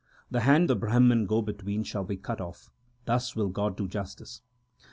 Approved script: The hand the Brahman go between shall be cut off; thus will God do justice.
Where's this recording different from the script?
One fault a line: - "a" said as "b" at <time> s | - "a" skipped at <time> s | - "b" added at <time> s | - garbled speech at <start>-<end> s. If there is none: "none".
none